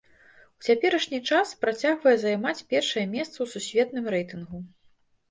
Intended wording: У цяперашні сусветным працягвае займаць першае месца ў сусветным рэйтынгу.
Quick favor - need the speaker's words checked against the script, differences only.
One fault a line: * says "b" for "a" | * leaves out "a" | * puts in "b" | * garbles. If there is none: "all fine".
* says "час" for "сусветным"